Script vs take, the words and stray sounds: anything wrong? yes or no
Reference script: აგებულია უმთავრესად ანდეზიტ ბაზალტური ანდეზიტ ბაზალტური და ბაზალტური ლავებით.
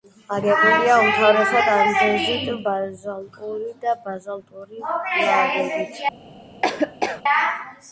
yes